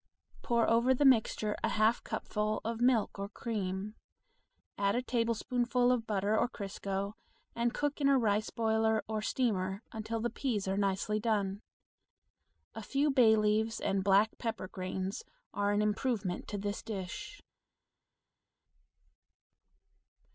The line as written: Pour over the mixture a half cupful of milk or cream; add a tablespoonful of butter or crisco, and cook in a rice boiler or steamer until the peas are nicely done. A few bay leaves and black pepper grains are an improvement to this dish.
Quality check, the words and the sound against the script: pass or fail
pass